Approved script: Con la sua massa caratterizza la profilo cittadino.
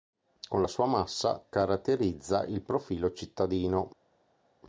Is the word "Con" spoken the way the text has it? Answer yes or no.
yes